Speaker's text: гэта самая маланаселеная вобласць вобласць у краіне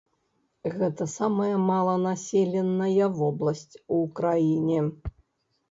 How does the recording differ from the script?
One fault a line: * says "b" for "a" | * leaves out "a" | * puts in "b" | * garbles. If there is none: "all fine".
* leaves out "вобласць"